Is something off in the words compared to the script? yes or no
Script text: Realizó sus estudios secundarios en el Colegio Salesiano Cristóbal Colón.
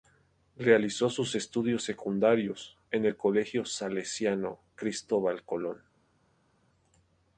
no